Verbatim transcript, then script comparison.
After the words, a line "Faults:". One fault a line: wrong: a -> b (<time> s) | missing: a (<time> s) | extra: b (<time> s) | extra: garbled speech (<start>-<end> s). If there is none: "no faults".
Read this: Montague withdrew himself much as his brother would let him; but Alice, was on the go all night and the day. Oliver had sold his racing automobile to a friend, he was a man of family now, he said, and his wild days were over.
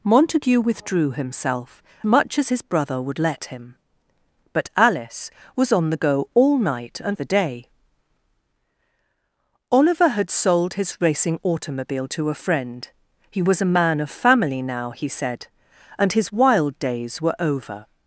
Montague withdrew himself much as his brother would let him; but Alice, was on the go all night and the day. Oliver had sold his racing automobile to a friend, he was a man of family now, he said, and his wild days were over.
Faults:
no faults